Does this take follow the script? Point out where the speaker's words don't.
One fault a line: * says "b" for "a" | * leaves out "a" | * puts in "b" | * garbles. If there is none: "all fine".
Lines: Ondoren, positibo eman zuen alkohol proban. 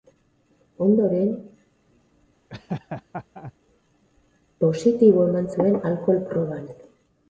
all fine